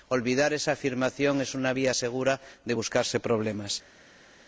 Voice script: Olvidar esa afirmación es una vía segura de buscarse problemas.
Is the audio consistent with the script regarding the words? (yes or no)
yes